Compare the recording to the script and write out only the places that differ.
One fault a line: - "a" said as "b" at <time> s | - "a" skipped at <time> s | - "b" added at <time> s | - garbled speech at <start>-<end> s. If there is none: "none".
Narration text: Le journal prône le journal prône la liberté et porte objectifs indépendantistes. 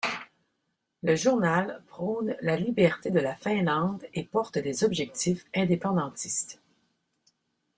- "le journal prône" said as "la liberté de" at 2.4 s
- "liberté" said as "Finlande" at 3.4 s
- "des" added at 4.6 s